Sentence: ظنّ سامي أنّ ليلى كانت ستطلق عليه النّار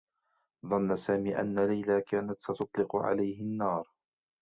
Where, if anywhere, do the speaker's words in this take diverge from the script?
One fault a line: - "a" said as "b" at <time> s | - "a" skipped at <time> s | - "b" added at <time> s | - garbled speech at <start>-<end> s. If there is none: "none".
none